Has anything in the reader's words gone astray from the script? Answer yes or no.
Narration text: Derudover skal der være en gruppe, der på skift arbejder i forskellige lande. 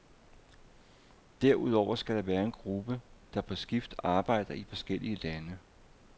no